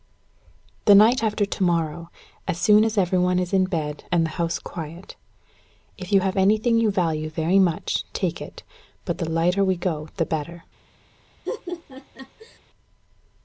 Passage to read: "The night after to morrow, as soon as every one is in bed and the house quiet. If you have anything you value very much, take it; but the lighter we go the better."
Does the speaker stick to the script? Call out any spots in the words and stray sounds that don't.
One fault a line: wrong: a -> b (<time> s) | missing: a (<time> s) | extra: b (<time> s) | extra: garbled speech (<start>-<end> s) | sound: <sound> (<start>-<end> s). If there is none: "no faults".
sound: laugh (11.5-12.6 s)